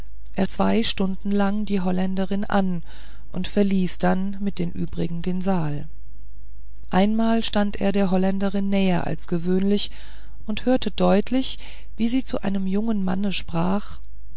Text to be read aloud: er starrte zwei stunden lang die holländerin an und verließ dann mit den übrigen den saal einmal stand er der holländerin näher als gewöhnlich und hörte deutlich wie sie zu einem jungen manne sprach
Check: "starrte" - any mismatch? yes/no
yes